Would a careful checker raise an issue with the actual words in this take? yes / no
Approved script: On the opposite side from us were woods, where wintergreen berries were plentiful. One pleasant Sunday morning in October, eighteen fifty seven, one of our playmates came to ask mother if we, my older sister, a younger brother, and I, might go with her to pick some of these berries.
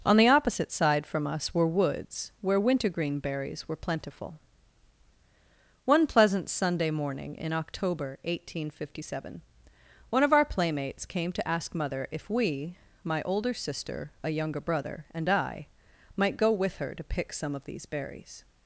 no